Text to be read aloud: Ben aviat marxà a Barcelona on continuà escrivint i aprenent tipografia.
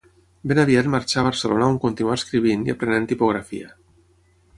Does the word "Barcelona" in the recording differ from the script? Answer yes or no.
no